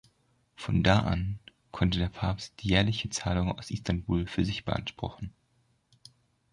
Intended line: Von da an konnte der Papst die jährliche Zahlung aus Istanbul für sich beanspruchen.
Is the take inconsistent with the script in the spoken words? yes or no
no